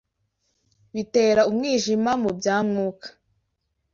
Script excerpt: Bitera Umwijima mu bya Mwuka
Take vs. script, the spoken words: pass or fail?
pass